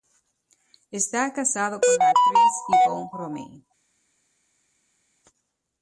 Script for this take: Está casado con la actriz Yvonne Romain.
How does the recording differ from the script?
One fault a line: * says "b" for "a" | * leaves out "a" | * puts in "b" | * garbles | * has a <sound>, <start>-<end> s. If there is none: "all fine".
all fine